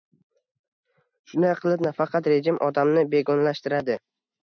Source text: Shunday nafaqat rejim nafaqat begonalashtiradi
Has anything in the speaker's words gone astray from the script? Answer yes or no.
yes